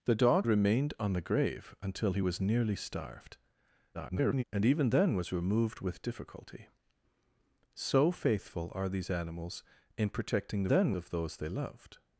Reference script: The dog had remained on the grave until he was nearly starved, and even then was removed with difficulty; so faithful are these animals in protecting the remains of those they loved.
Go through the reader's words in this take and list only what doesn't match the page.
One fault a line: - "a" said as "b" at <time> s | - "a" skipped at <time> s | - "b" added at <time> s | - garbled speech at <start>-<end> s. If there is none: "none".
- "had" skipped at 0.5 s
- garbled speech at 3.9-4.4 s
- "remains" said as "then" at 10.7 s